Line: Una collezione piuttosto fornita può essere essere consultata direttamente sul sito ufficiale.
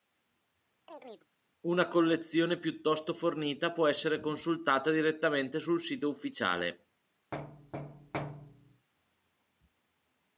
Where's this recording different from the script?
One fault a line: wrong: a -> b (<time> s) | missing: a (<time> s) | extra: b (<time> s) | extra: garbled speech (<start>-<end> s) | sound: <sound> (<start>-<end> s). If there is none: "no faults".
sound: chirp (0.9-1.3 s)
missing: essere (4.2 s)
sound: thud (7.3-8.9 s)